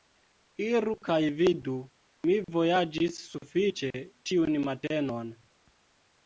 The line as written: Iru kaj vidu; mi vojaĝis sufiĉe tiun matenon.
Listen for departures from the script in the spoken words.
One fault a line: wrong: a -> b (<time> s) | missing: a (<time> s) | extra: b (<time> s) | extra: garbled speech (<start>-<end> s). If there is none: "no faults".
no faults